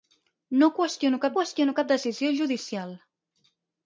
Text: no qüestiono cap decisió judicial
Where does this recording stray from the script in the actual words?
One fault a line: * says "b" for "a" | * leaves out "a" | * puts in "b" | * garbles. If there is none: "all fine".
* puts in "qüestiono cap"